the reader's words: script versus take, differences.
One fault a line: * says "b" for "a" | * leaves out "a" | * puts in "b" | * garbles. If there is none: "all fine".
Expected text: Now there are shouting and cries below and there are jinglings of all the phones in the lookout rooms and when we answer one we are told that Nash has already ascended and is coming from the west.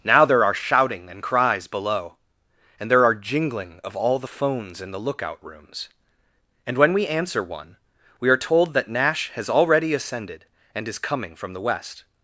* says "jingling" for "jinglings"